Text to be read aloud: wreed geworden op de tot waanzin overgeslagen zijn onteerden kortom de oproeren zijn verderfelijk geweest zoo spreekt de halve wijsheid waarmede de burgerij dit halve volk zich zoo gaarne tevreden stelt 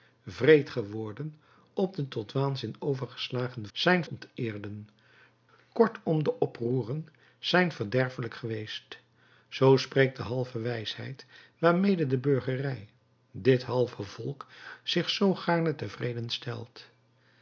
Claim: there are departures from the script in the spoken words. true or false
false